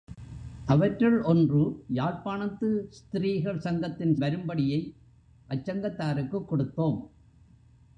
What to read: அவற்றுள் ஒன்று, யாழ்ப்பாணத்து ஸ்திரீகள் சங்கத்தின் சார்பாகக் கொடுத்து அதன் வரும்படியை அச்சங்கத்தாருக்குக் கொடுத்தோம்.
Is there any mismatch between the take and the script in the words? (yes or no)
yes